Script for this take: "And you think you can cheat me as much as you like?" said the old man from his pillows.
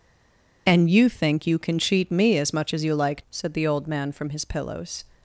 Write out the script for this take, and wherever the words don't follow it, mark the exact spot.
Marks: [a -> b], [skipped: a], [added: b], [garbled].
"And you think you can cheat me as much as you like?" said the old man from his pillows.